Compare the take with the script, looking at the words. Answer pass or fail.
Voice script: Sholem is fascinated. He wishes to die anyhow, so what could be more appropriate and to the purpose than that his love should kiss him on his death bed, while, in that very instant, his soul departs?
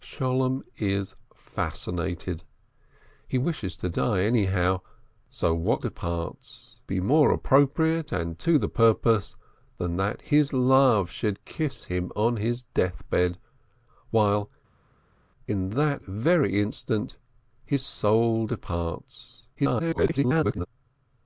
fail